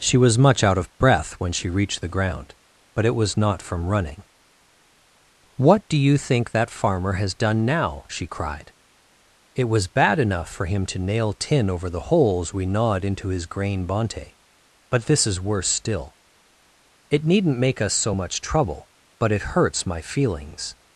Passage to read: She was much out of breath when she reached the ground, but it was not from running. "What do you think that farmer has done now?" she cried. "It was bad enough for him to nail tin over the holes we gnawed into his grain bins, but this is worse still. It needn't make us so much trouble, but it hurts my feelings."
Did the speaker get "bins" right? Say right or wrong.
wrong